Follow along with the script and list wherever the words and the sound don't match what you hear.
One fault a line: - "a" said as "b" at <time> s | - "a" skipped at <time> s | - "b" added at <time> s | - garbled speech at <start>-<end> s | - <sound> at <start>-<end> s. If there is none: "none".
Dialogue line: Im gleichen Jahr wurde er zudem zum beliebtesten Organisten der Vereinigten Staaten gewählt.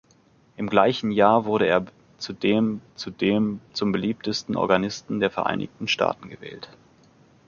- "zudem" added at 2.9 s